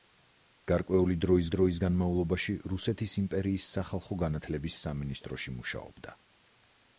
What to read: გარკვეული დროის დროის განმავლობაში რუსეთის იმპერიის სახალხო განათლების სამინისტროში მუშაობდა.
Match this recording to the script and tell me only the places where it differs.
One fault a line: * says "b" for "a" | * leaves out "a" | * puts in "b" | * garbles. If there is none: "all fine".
all fine